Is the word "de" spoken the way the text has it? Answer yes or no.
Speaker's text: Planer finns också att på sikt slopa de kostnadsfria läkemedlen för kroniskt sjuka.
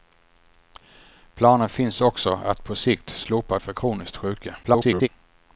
no